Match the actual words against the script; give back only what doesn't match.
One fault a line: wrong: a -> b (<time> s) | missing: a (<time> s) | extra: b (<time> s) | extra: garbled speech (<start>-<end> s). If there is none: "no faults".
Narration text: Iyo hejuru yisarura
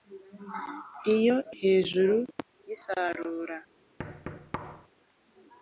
no faults